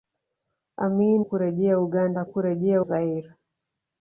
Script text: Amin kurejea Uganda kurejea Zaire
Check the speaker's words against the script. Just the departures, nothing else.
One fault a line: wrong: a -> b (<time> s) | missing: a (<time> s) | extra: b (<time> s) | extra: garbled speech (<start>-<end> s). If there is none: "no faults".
no faults